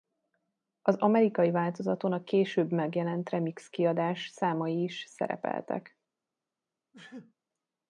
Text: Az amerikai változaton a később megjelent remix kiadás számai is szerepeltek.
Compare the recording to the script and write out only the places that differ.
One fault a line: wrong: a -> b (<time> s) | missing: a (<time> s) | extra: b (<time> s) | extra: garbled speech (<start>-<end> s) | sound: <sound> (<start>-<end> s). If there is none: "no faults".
sound: sneeze (6.9-7.3 s)